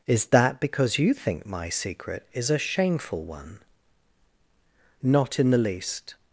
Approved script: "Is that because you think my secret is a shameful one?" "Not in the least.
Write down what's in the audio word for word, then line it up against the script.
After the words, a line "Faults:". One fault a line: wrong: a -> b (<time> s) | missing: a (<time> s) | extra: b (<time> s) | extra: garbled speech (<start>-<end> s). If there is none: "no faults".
"Is that because you think my secret is a shameful one?" "Not in the least.
Faults:
no faults